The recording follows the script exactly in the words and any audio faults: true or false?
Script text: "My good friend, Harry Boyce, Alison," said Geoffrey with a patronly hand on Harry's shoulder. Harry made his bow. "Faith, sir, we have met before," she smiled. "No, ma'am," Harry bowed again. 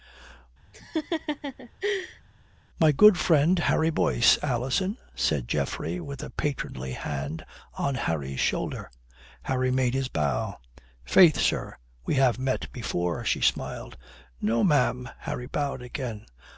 false